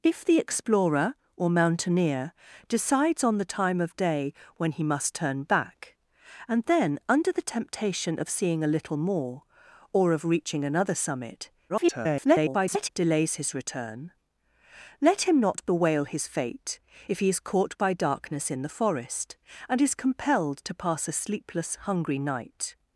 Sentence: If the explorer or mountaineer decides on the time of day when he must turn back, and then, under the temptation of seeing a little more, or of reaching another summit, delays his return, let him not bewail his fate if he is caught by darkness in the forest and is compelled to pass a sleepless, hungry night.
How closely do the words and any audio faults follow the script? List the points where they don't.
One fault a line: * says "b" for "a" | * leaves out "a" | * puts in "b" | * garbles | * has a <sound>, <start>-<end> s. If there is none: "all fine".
* garbles